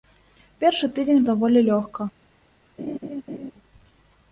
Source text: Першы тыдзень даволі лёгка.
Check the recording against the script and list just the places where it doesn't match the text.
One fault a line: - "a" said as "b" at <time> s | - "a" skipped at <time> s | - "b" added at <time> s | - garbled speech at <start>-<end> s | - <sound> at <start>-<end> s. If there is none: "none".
- laugh at 2.8-3.5 s